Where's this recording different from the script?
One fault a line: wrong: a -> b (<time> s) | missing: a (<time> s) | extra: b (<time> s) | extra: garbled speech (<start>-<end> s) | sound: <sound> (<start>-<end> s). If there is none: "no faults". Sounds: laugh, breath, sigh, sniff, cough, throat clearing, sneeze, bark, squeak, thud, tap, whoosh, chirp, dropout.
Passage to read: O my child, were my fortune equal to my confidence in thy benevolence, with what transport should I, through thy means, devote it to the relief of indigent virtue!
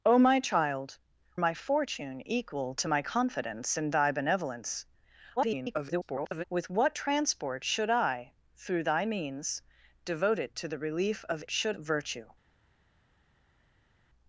missing: were (1.0 s)
extra: garbled speech (5.4-6.4 s)
wrong: indigent -> should (11.5 s)